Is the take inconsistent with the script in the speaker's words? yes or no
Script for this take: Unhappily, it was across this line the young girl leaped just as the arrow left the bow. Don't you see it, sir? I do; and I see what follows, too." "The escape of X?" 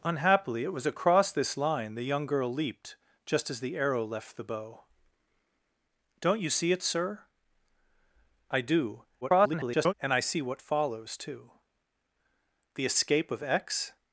yes